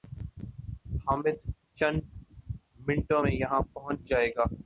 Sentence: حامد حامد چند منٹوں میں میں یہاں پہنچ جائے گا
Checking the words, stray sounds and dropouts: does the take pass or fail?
fail